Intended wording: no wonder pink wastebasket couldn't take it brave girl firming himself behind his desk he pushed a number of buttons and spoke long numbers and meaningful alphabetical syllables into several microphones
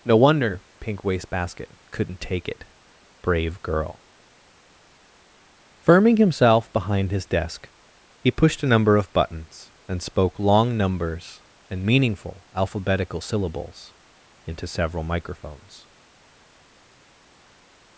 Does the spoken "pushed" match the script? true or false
true